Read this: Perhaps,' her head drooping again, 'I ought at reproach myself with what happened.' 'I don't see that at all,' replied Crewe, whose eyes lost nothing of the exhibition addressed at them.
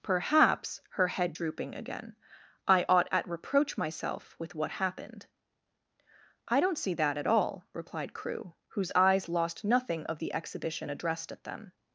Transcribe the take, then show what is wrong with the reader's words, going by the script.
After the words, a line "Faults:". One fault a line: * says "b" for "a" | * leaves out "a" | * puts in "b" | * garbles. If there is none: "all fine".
Perhaps,' her head drooping again, 'I ought at reproach myself with what happened.' 'I don't see that at all,' replied Crewe, whose eyes lost nothing of the exhibition addressed at them.
Faults:
all fine